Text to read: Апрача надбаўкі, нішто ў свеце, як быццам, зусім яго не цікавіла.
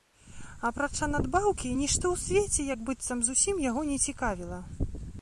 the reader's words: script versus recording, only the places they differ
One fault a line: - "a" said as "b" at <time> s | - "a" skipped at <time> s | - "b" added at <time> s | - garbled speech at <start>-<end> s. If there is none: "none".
none